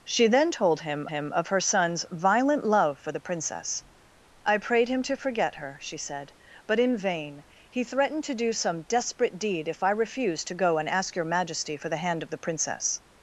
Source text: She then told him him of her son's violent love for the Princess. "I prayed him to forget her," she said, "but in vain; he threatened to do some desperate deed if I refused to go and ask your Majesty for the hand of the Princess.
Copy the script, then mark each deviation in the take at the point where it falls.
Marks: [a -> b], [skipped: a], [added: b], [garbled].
She then told him him of her son's violent love for the Princess. "I prayed him to forget her," she said, "but in vain; he threatened to do some desperate deed if I refused to go and ask your Majesty for the hand of the Princess.